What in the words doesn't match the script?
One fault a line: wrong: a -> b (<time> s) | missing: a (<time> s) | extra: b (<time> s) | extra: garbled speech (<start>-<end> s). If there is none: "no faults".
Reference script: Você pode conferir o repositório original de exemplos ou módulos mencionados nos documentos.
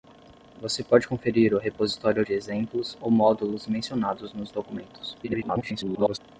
missing: original (2.2 s)
extra: garbled speech (5.2-6.2 s)